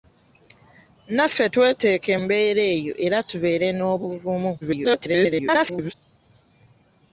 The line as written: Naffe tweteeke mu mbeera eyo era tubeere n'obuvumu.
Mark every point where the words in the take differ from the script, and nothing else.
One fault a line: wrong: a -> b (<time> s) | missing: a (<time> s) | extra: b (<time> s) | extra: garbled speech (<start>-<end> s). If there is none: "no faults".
missing: mu (2.1 s)
extra: garbled speech (4.6-5.9 s)